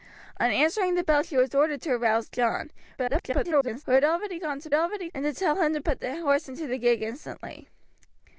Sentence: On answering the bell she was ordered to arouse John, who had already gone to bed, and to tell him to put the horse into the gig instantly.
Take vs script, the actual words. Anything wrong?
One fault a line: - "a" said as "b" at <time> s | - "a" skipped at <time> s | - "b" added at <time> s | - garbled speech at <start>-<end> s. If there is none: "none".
- garbled speech at 3.0-3.8 s
- "bed" said as "already" at 4.7 s